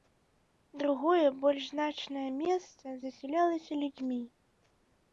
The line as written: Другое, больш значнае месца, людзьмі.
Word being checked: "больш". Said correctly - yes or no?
yes